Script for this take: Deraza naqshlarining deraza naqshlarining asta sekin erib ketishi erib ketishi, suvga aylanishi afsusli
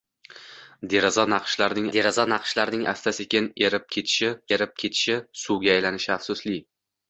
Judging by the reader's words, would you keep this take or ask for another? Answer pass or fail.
pass